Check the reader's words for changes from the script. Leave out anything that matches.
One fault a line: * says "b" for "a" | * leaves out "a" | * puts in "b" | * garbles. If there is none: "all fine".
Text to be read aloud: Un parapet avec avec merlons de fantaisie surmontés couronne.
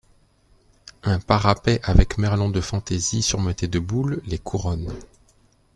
* leaves out "avec"
* puts in "de boules les"